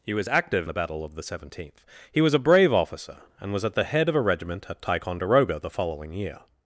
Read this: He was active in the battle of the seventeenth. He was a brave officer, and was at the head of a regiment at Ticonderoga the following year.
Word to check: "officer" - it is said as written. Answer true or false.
true